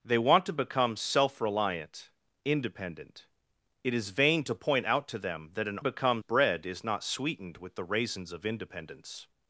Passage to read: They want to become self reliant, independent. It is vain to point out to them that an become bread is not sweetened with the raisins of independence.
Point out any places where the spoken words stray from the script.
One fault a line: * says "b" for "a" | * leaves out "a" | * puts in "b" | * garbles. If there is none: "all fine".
all fine